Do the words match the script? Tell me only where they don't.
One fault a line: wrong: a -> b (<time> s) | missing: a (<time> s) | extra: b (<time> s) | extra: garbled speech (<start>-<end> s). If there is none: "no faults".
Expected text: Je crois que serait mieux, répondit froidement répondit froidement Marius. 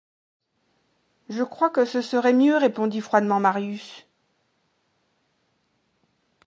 extra: ce (1.9 s)
missing: répondit froidement (3.4 s)